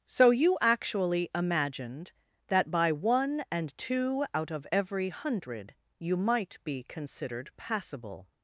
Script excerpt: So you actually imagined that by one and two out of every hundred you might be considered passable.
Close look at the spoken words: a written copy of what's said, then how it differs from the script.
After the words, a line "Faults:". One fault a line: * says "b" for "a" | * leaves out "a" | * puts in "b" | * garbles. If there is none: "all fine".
So you actually imagined that by one and two out of every hundred you might be considered passable.
Faults:
all fine